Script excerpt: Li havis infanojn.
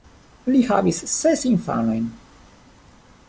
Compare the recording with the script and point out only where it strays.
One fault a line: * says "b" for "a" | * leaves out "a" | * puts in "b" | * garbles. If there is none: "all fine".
* puts in "ses"